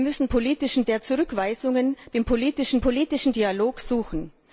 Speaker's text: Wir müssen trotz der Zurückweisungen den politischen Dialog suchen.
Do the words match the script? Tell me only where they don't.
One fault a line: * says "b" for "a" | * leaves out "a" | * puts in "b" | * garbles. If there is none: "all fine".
* says "politischen" for "trotz"
* puts in "politischen"